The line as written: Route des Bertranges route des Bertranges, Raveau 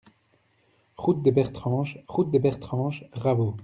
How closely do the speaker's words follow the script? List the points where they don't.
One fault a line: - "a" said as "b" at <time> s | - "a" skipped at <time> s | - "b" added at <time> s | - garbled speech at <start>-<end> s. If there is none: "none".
none